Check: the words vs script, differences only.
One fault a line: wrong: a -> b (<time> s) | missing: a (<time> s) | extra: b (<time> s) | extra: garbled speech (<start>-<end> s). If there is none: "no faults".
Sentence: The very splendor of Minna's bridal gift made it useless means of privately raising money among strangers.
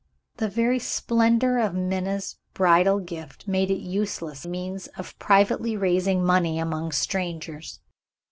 no faults